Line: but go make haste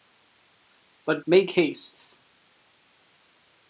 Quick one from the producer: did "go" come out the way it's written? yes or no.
no